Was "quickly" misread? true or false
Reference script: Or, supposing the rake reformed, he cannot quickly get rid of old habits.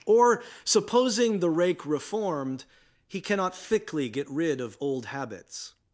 true